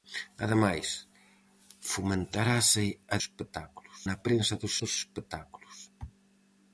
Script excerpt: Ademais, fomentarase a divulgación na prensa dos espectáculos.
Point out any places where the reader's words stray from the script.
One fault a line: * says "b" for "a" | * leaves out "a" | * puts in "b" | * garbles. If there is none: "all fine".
* says "espectáculos" for "divulgación"
* puts in "dos"